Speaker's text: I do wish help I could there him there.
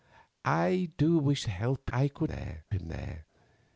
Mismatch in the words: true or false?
false